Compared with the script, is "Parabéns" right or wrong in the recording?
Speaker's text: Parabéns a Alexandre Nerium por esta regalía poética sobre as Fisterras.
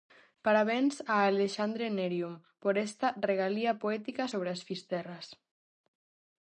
right